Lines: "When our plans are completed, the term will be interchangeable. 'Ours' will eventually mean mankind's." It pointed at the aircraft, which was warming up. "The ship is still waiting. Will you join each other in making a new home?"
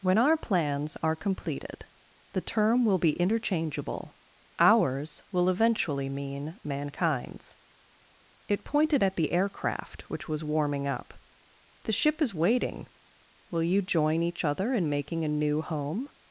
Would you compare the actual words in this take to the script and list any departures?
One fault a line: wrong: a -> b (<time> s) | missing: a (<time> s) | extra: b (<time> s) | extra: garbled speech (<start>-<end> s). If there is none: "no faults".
missing: still (12.3 s)